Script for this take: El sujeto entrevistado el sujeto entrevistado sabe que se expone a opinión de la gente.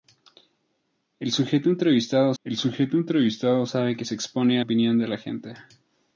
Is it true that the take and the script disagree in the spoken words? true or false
false